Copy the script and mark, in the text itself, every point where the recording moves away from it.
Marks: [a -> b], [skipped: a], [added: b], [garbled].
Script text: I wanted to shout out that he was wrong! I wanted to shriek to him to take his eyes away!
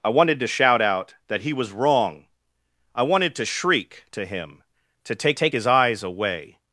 I wanted to shout out that he was wrong! I wanted to shriek to him to take [added: take] his eyes away!